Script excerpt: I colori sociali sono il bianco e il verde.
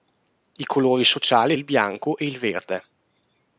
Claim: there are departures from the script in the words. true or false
true